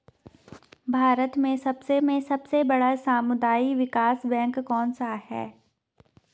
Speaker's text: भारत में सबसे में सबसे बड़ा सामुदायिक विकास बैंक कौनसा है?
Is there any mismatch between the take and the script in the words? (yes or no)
no